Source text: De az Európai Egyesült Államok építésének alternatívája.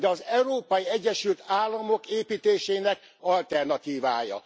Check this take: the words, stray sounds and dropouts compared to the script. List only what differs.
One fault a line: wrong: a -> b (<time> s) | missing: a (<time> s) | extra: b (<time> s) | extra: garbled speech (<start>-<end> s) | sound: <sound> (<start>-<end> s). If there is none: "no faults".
no faults